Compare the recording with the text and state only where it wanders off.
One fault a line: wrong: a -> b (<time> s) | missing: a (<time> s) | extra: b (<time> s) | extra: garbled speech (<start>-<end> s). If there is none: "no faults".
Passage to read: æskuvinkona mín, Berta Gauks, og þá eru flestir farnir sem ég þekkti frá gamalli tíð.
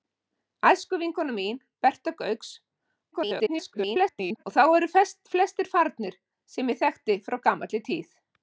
extra: garbled speech (3.1-4.4 s)